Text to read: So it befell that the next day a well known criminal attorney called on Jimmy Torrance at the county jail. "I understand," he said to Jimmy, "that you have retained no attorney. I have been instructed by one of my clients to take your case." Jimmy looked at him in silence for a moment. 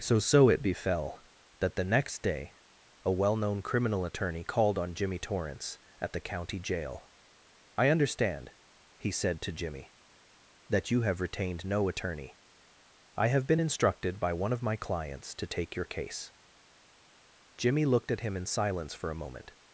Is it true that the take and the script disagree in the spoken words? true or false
true